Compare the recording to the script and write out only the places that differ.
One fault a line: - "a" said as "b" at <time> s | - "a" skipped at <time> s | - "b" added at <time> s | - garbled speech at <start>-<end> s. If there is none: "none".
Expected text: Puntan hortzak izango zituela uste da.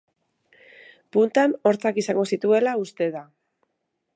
none